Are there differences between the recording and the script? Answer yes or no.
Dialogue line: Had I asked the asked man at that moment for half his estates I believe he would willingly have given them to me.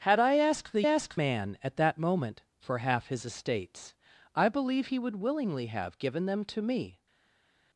no